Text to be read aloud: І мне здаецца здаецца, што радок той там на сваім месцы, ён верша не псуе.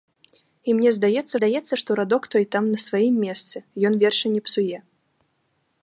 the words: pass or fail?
pass